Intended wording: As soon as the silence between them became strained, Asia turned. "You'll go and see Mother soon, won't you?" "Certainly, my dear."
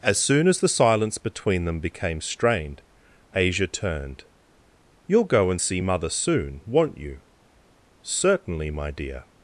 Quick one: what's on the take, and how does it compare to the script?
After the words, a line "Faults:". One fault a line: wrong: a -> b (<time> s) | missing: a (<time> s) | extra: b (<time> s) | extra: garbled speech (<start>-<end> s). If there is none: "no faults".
As soon as the silence between them became strained, Asia turned. "You'll go and see Mother soon, won't you?" "Certainly, my dear."
Faults:
no faults